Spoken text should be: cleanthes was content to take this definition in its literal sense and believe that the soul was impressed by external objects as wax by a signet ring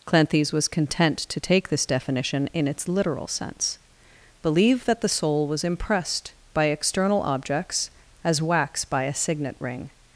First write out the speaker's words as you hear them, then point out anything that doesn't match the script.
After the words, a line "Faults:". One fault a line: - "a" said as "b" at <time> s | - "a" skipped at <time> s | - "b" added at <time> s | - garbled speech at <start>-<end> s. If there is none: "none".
cleanthes was content to take this definition in its literal sense believe that the soul was impressed by external objects as wax by a signet ring
Faults:
- "and" skipped at 3.8 s